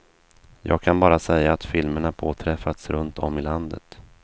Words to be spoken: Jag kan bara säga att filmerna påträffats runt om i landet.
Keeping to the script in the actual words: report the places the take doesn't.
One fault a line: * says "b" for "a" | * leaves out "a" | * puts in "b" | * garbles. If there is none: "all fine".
all fine